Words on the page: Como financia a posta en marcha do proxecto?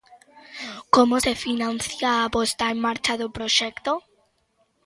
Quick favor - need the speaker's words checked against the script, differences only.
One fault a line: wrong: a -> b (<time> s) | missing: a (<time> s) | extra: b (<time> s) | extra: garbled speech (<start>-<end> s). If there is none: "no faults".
extra: se (1.2 s)